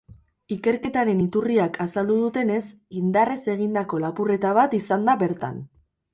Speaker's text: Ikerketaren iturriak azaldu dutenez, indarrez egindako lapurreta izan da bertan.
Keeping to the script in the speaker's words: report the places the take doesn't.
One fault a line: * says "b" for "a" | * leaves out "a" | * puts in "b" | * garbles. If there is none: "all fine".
* puts in "bat"